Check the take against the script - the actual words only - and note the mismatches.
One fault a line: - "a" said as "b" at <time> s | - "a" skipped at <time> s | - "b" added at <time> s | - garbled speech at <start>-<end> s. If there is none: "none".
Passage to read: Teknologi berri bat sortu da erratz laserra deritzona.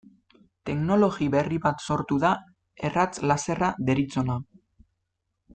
none